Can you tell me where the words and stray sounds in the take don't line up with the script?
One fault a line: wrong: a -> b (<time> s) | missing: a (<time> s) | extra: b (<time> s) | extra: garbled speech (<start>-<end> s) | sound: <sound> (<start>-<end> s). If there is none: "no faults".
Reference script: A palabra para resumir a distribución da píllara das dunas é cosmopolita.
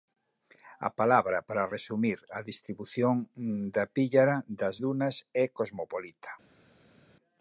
no faults